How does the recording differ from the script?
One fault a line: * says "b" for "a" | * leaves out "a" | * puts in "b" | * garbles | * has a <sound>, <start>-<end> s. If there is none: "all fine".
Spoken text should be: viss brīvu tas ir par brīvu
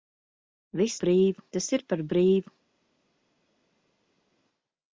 all fine